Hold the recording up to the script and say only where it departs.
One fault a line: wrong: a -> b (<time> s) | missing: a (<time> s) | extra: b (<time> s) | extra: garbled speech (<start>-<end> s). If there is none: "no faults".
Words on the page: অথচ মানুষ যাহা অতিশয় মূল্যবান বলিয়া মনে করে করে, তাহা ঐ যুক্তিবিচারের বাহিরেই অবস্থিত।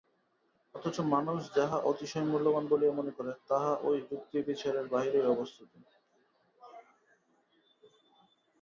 missing: করে (3.3 s)